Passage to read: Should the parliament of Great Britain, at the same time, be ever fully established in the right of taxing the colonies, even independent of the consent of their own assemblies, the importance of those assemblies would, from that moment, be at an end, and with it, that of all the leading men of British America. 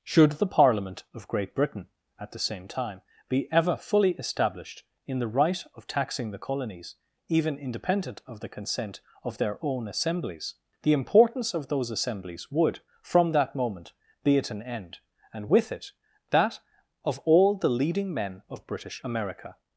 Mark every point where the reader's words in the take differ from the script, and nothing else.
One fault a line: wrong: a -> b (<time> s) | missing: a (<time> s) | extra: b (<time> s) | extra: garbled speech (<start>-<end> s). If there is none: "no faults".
no faults